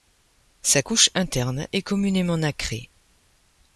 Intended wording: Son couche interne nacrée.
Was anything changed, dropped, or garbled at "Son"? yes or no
yes